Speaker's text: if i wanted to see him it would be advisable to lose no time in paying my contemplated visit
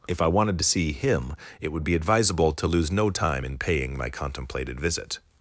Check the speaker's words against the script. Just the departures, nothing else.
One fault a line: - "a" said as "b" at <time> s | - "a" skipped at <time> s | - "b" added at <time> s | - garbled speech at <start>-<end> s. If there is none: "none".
none